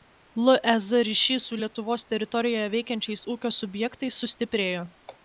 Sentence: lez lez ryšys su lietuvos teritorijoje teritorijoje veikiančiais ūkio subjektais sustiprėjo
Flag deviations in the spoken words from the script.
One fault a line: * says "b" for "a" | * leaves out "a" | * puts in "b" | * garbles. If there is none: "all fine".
* leaves out "lez"
* leaves out "teritorijoje"